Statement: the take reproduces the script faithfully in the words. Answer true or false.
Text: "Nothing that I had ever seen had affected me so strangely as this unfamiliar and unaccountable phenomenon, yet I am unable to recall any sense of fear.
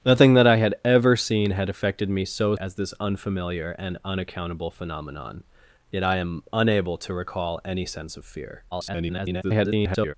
false